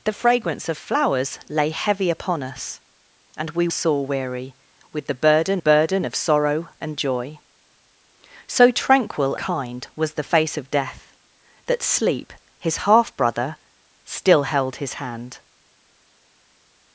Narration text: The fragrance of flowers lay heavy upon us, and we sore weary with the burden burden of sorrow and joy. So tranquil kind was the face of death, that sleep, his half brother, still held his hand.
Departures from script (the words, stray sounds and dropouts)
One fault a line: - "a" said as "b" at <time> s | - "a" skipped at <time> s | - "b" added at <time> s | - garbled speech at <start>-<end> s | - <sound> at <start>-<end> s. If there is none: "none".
none